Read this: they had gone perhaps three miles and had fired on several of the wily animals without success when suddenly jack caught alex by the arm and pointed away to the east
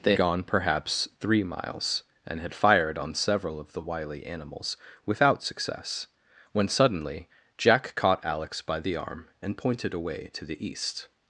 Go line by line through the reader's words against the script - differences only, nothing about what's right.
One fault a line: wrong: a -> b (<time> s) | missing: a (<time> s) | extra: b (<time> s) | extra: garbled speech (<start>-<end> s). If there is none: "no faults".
missing: had (0.1 s)